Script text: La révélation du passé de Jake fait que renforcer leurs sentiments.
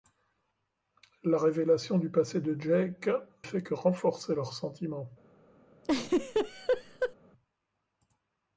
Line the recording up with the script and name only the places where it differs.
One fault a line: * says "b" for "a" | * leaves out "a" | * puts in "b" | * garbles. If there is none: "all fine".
all fine